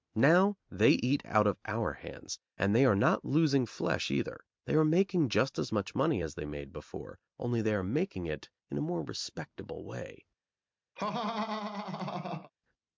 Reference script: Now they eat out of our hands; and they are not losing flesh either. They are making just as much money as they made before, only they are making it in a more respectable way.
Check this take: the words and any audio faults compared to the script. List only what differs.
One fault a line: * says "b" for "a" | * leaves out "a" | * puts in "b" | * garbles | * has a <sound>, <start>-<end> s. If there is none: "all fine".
* has a laugh, 11.0-12.5 s